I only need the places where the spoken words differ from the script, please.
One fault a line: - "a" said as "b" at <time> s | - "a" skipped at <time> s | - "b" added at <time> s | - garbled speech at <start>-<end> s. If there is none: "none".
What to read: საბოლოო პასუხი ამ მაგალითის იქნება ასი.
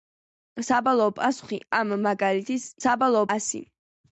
- "იქნება" said as "საბოლოო" at 2.8 s